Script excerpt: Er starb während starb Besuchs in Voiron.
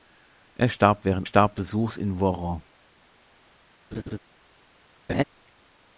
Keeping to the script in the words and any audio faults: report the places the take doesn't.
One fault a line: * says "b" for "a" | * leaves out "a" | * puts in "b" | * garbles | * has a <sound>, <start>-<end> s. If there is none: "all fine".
* has a laugh, 3.9-4.2 s
* has a laugh, 5.1-5.2 s